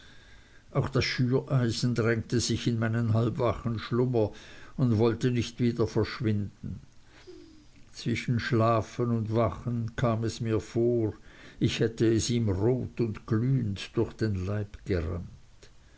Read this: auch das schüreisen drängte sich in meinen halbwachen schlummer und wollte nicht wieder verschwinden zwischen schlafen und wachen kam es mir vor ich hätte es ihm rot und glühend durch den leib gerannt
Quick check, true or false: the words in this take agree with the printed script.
true